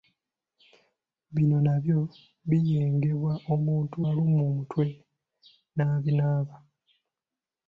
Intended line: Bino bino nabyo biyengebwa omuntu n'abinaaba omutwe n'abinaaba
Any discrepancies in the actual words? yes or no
yes